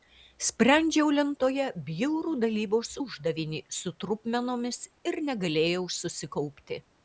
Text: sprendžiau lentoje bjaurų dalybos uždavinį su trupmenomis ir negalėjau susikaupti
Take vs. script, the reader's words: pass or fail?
pass